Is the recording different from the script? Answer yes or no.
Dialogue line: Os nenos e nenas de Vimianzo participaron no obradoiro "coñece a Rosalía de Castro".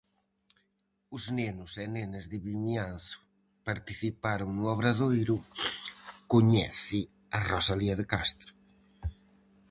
no